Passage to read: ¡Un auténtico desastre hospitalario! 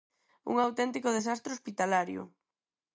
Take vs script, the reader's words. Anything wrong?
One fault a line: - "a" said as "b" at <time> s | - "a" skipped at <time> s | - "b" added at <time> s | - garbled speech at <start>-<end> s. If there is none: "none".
none